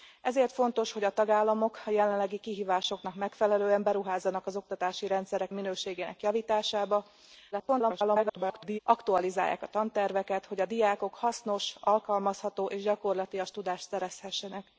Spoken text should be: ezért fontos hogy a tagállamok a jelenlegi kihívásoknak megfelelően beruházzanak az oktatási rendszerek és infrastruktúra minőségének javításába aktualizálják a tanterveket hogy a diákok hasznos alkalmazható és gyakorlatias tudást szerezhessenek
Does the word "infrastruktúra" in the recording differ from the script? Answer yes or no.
yes